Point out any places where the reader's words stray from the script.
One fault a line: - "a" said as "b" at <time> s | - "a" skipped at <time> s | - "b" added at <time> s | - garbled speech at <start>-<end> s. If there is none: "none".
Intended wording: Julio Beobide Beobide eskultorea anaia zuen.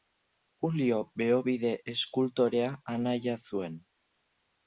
- "Beobide" skipped at 1.7 s